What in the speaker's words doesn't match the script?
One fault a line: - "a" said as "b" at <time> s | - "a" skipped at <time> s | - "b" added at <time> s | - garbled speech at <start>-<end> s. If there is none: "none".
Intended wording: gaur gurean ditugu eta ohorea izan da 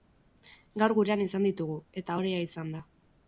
- "izan" added at 1.2 s